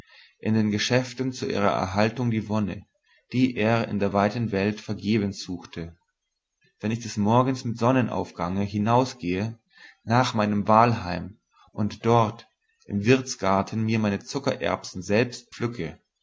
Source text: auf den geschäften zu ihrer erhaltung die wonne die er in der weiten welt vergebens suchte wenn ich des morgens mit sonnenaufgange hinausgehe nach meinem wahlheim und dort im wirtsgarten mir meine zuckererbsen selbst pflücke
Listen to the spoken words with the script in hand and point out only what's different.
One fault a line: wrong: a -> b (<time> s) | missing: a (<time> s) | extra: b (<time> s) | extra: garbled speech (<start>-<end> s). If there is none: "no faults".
wrong: auf -> in (0.4 s)